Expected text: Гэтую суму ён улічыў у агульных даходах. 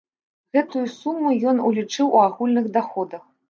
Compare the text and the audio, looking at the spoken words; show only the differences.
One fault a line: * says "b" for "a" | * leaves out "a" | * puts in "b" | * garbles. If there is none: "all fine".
all fine